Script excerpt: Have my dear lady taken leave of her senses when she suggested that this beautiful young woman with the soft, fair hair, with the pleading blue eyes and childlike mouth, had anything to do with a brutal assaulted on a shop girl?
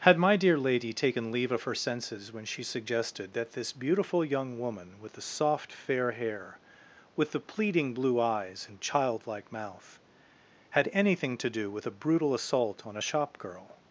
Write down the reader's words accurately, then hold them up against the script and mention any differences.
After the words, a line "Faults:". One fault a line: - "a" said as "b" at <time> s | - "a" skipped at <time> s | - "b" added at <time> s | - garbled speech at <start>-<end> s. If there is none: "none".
Had my dear lady taken leave of her senses when she suggested that this beautiful young woman with the soft, fair hair, with the pleading blue eyes and childlike mouth, had anything to do with a brutal assault on a shop girl?
Faults:
- "Have" said as "Had" at 0.0 s
- "assaulted" said as "assault" at 12.3 s